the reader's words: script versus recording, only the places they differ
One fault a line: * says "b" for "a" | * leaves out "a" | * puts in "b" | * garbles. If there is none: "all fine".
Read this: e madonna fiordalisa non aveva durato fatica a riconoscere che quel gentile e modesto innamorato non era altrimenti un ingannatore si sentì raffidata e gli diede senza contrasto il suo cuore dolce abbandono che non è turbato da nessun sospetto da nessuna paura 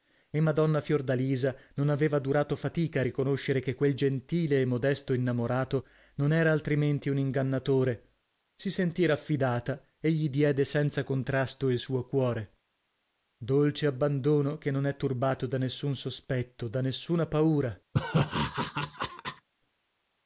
all fine